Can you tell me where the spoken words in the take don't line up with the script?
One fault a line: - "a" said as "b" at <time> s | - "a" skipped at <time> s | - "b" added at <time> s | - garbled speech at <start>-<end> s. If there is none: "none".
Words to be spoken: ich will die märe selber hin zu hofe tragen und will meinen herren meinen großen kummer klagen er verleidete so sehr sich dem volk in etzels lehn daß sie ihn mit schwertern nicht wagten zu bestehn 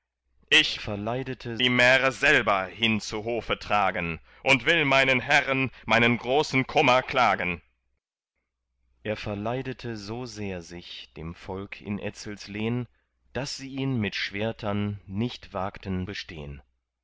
- "will" said as "verleidete" at 0.8 s
- "zu" skipped at 16.1 s